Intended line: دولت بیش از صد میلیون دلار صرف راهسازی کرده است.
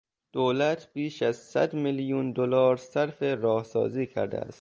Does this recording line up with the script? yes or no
yes